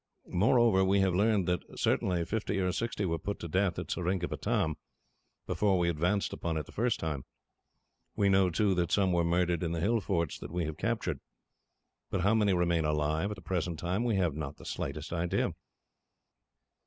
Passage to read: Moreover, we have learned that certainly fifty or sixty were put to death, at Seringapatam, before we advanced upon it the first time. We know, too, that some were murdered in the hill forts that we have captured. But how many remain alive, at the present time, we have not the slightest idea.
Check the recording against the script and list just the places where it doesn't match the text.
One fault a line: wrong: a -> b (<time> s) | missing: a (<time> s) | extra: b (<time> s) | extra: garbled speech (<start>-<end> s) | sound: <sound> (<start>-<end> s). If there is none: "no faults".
no faults